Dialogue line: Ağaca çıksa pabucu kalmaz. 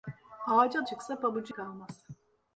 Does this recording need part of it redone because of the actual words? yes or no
no